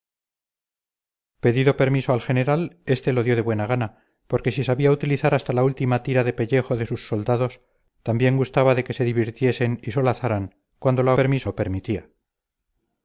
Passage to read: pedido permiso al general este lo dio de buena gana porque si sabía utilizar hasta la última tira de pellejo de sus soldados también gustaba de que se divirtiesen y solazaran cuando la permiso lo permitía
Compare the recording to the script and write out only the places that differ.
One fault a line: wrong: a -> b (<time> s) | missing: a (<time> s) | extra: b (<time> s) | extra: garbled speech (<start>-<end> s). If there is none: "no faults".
no faults